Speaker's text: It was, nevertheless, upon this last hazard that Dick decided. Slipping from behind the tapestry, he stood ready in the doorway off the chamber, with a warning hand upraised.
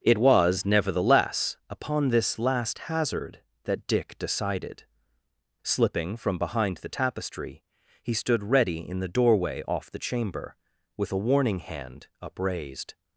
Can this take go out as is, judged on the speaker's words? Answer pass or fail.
pass